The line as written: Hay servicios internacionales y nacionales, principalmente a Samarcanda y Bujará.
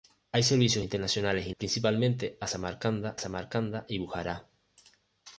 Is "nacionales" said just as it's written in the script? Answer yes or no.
no